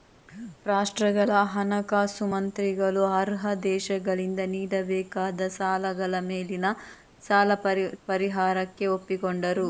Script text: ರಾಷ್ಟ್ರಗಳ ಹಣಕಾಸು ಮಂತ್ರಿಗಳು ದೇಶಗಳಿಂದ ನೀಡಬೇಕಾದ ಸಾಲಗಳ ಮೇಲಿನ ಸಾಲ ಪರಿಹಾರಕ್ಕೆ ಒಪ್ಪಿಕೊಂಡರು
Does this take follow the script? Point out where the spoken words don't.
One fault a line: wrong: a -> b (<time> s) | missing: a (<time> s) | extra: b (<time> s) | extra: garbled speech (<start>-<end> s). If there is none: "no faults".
extra: ಅರ್ಹ (3.2 s)